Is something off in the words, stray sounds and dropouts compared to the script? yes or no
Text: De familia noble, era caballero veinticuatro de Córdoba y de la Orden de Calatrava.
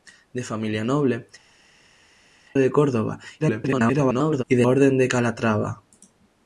yes